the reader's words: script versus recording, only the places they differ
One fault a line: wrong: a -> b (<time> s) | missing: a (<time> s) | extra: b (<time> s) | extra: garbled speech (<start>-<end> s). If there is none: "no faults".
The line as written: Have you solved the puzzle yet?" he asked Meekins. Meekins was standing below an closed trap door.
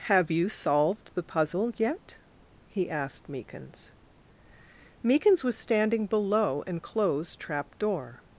no faults